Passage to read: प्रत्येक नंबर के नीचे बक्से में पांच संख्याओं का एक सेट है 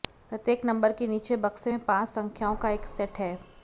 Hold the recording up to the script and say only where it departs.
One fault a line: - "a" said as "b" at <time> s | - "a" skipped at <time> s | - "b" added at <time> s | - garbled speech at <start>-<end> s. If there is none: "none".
none